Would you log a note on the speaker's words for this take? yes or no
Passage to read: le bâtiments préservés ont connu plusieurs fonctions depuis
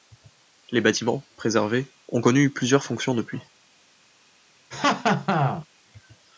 yes